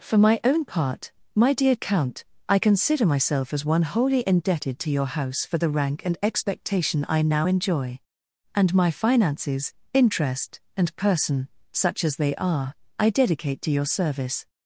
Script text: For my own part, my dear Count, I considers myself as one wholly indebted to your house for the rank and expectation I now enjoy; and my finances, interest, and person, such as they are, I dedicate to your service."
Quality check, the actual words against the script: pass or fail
fail